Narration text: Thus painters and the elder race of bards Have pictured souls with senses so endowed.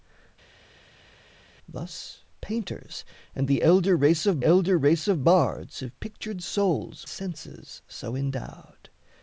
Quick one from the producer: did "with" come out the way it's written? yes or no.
no